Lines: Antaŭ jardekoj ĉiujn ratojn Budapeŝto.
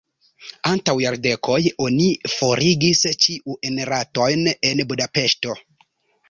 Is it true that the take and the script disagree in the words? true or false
true